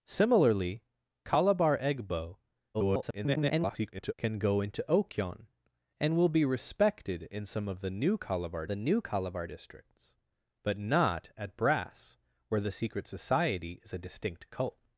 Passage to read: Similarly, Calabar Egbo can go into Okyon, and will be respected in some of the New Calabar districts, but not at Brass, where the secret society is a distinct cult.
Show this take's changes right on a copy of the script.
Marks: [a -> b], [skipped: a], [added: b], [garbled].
Similarly, Calabar Egbo [garbled] can go into Okyon, and will be respected in some of the New Calabar [added: the New Calabar] districts, but not at Brass, where the secret society is a distinct cult.